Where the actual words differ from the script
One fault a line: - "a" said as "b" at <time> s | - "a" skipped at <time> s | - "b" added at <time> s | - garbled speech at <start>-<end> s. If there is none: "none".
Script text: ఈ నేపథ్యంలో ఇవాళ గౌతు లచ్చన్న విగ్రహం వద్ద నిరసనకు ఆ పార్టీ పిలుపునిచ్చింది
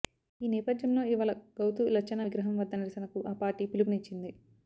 none